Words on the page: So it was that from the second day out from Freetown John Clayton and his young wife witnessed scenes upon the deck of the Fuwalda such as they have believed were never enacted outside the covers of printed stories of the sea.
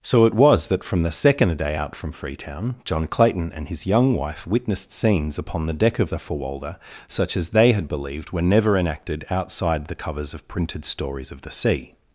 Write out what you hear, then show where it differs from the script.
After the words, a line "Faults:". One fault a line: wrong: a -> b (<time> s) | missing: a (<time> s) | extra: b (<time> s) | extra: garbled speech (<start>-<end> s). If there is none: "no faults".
So it was that from the second day out from Freetown John Clayton and his young wife witnessed scenes upon the deck of the Fuwalda such as they had believed were never enacted outside the covers of printed stories of the sea.
Faults:
wrong: have -> had (7.7 s)